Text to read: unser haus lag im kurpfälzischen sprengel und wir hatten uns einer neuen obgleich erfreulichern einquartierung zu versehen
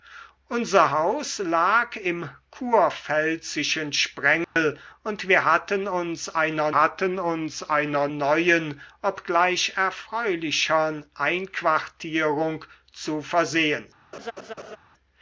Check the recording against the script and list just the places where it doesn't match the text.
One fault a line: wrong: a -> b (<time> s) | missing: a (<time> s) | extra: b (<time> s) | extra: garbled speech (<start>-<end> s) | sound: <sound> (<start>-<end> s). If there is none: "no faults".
sound: dropout (4.4-4.6 s)
extra: hatten uns einer (6.7 s)
sound: laugh (14.1-14.8 s)